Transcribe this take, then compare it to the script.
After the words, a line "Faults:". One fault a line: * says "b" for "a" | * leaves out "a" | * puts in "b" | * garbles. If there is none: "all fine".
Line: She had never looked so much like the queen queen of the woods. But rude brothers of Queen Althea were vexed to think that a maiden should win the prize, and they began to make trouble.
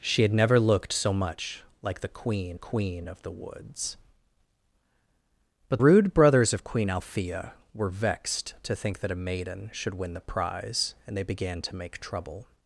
She had never looked so much like the queen queen of the woods. But rude brothers of Queen Althea were vexed to think that a maiden should win the prize, and they began to make trouble.
Faults:
all fine